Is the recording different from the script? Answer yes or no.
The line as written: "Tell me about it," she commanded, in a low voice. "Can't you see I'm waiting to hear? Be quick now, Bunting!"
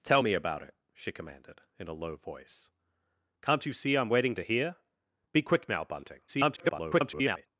yes